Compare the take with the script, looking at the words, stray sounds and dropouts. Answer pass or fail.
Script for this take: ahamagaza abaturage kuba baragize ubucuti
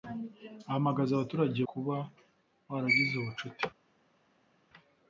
pass